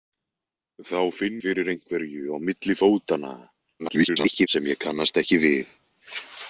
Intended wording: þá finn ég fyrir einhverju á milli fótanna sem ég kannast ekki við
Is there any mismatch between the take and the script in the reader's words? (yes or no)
yes